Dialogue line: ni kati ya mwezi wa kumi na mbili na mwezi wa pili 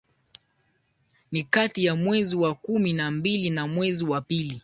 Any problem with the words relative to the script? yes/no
no